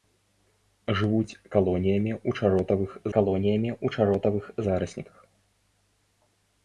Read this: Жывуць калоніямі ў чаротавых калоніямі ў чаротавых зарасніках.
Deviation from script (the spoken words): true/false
false